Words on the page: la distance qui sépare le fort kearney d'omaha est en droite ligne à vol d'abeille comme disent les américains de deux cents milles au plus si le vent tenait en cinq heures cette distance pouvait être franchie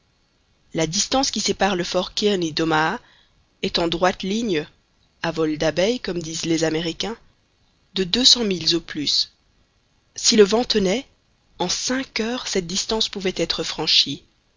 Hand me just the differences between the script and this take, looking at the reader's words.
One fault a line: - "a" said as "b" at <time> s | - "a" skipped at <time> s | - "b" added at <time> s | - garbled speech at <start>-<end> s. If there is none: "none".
none